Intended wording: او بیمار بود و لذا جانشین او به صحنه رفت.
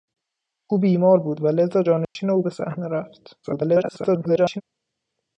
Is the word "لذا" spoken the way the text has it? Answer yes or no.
yes